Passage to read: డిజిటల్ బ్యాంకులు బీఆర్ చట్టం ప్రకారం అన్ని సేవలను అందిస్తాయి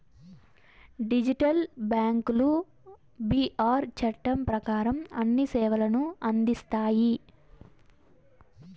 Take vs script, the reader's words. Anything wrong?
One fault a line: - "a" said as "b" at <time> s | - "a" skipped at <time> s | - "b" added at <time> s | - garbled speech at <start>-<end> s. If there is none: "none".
none